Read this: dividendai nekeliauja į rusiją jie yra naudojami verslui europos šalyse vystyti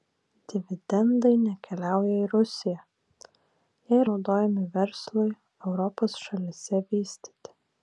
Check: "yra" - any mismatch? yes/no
yes